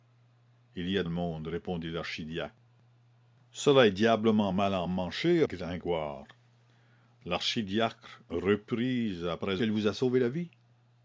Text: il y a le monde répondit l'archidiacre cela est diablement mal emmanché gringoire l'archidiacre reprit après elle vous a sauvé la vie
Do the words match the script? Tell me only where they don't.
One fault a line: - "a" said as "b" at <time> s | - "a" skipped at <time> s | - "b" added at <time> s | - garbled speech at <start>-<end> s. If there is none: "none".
none